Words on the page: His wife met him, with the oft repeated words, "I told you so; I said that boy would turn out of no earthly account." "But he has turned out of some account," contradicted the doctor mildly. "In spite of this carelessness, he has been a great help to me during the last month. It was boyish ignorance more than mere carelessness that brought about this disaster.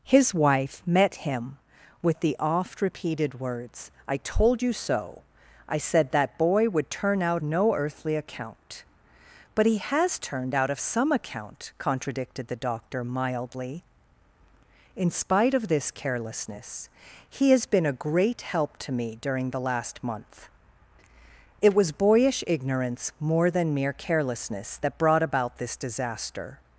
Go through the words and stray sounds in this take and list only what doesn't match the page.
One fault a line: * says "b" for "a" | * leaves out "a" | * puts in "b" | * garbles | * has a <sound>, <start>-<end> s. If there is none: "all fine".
* leaves out "of"